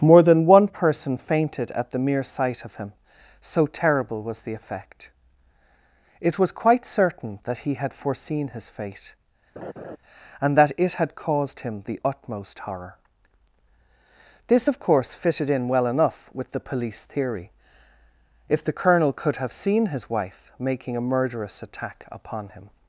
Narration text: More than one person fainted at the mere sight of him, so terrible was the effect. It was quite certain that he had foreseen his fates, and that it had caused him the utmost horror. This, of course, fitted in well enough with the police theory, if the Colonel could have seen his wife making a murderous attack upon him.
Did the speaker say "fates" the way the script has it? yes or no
no